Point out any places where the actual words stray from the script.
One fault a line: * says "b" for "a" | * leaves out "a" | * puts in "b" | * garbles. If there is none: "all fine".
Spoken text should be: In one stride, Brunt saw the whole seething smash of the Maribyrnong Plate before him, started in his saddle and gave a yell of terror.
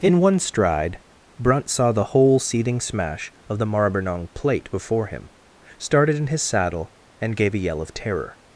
all fine